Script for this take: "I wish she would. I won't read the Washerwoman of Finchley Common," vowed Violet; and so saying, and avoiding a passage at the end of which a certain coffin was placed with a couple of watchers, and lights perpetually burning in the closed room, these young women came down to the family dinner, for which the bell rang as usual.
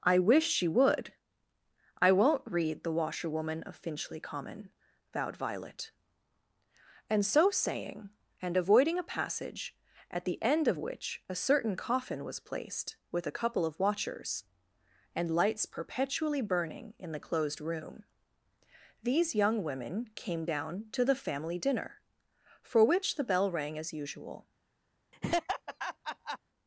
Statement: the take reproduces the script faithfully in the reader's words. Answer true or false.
true